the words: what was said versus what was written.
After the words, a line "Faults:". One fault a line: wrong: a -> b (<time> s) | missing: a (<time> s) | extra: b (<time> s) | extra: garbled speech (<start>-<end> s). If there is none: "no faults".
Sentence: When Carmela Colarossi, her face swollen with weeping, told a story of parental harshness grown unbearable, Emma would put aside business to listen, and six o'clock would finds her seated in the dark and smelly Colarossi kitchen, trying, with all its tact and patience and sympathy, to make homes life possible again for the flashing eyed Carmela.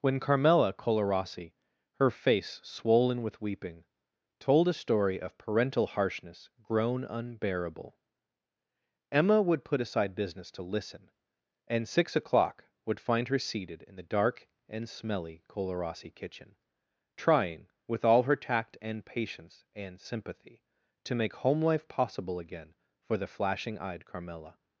When Carmela Colarossi, her face swollen with weeping, told a story of parental harshness grown unbearable, Emma would put aside business to listen, and six o'clock would find her seated in the dark and smelly Colarossi kitchen, trying, with all her tact and patience and sympathy, to make home life possible again for the flashing eyed Carmela.
Faults:
wrong: finds -> find (13.0 s)
wrong: its -> her (18.2 s)
wrong: homes -> home (21.4 s)